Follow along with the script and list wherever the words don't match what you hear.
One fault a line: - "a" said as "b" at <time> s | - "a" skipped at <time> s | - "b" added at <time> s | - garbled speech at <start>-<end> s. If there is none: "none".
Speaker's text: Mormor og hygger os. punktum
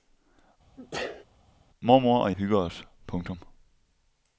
none